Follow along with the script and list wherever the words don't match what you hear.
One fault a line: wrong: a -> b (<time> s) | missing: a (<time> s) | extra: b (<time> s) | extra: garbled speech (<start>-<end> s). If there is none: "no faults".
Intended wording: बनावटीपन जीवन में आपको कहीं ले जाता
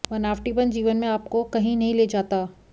extra: नहीं (1.8 s)